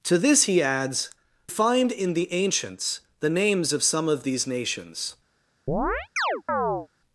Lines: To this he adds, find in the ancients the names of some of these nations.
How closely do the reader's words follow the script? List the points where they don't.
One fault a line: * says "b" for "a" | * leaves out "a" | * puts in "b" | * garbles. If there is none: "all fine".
all fine